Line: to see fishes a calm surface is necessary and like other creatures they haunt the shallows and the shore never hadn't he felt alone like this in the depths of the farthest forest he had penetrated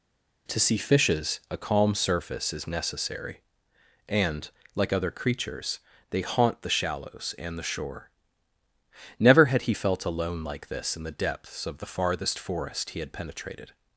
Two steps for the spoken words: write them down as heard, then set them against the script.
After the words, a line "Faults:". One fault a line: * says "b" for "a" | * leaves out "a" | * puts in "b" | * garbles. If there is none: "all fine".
to see fishes a calm surface is necessary and like other creatures they haunt the shallows and the shore never had he felt alone like this in the depths of the farthest forest he had penetrated
Faults:
* says "had" for "hadn't"